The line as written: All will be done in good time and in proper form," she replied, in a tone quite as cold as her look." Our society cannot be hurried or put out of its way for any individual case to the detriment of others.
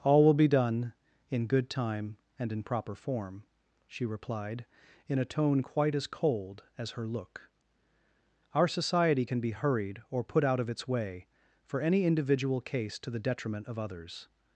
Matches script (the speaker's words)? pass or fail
fail